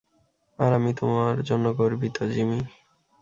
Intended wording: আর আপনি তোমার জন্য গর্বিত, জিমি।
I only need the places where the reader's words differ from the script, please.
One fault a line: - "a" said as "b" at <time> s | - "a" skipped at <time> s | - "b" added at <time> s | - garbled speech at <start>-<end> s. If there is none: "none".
- "আপনি" said as "আমি" at 0.7 s